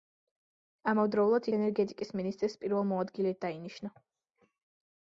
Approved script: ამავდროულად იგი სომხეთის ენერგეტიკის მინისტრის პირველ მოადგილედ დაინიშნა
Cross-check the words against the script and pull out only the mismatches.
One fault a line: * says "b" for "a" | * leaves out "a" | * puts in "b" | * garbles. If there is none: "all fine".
* leaves out "იგი სომხეთის"